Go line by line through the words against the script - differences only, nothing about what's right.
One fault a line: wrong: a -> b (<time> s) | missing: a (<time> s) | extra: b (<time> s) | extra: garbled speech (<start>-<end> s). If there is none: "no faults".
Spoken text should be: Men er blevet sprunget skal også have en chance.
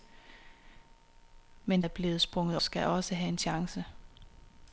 no faults